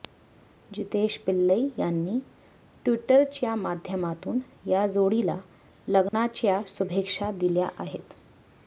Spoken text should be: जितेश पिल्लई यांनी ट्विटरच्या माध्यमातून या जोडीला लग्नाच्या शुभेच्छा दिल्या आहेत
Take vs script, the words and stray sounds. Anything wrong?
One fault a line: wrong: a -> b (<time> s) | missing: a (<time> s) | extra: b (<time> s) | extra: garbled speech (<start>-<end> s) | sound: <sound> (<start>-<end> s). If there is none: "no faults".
sound: dropout (6.1-6.1 s)